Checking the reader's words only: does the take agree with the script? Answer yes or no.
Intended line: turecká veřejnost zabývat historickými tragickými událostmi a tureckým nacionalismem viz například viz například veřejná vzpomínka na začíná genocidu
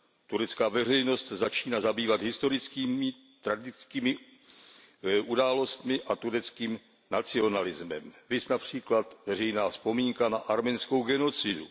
no